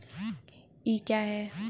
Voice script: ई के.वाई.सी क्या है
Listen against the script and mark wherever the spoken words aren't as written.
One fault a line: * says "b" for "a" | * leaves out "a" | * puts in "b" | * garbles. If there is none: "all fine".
* leaves out "के.वाई.सी"